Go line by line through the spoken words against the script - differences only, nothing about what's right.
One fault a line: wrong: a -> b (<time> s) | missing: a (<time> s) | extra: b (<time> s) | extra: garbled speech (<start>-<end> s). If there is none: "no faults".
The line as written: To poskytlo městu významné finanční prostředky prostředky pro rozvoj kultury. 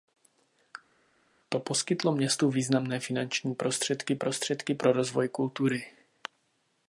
no faults